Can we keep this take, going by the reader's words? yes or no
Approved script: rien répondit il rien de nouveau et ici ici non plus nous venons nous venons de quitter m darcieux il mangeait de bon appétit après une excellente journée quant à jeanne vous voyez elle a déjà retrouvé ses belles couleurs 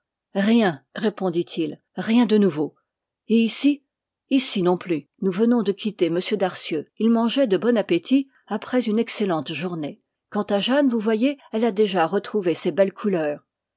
no